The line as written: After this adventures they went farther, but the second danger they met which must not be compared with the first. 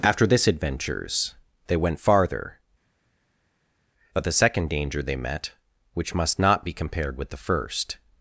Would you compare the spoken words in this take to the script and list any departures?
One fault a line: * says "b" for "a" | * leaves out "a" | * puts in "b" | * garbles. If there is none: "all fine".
all fine